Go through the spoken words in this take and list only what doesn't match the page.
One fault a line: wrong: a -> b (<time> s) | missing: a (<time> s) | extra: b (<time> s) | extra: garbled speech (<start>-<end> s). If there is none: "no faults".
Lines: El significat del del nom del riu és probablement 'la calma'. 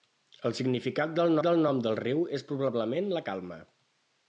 no faults